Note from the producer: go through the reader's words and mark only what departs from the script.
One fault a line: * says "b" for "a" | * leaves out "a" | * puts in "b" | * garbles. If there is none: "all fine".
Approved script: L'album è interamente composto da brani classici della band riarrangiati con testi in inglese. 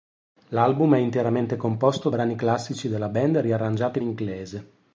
* leaves out "da"
* leaves out "con testi in"